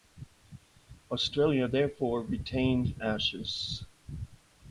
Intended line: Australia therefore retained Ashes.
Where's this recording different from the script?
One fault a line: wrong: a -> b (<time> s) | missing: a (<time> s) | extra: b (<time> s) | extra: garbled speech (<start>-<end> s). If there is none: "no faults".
no faults